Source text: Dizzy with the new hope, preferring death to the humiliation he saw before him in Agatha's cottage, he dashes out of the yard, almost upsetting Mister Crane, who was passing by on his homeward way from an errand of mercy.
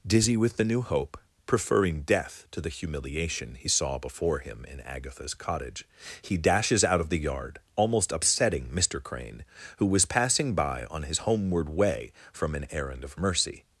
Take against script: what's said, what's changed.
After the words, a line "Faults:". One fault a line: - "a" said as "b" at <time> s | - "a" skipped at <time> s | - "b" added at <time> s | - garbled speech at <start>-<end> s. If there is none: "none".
Dizzy with the new hope, preferring death to the humiliation he saw before him in Agatha's cottage, he dashes out of the yard, almost upsetting Mister Crane, who was passing by on his homeward way from an errand of mercy.
Faults:
none